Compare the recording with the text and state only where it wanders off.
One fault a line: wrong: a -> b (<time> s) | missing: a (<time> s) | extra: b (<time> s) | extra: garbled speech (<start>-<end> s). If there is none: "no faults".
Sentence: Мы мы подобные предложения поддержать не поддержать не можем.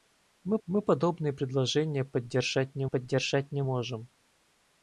no faults